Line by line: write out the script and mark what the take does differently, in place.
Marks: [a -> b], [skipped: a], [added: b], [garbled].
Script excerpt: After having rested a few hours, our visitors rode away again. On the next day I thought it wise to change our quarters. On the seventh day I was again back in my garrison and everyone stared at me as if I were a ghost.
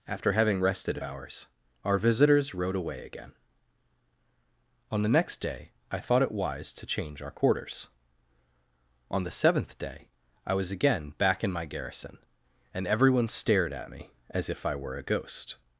After having rested a [skipped: few] hours, our visitors rode away again. On the next day I thought it wise to change our quarters. On the seventh day I was again back in my garrison and everyone stared at me as if I were a ghost.